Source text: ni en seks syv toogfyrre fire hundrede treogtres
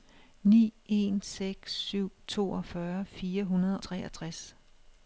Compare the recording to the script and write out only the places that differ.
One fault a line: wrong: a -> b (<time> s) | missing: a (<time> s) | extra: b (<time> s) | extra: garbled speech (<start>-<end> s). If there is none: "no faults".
no faults